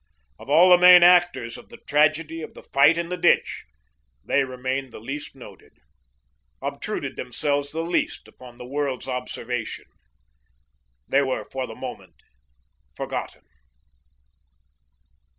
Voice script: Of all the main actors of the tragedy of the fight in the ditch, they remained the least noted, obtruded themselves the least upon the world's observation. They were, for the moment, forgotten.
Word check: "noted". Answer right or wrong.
right